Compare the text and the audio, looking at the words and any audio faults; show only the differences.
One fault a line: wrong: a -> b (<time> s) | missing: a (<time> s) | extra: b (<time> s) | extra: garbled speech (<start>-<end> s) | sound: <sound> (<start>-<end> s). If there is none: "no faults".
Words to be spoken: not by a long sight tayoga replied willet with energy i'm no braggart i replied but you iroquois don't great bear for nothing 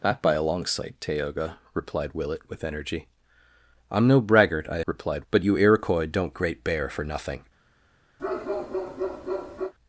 sound: bark (8.2-9.7 s)